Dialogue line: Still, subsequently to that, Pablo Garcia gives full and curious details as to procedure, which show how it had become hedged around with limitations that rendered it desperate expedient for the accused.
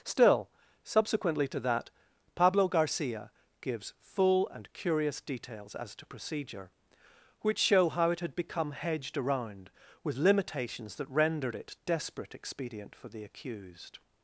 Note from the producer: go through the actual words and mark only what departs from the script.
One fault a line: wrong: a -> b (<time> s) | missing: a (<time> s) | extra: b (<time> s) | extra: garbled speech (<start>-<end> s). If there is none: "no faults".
no faults